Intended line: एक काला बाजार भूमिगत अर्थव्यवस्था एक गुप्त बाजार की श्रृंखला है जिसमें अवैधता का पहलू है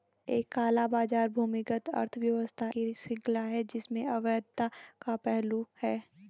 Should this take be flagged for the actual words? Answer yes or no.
yes